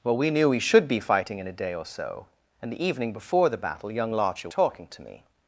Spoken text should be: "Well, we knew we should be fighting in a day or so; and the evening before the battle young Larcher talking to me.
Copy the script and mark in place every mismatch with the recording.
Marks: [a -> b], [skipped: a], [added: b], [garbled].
"Well, we knew we should be fighting in a day or so; and the evening before the battle young Larcher talking to me.